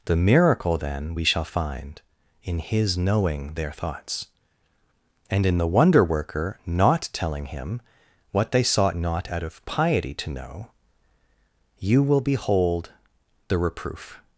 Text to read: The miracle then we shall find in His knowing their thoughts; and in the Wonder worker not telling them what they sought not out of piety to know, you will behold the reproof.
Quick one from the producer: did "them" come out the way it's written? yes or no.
no